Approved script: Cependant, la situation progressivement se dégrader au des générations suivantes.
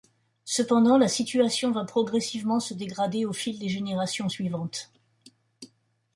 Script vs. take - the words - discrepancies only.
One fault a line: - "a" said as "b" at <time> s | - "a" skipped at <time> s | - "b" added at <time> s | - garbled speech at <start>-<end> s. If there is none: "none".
- "va" added at 1.7 s
- "fil" added at 3.3 s